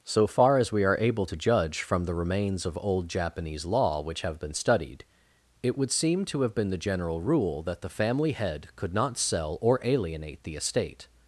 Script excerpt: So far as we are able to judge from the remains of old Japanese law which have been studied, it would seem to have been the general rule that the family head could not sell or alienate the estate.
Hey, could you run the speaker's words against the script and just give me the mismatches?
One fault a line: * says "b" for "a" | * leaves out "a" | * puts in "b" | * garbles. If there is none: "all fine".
all fine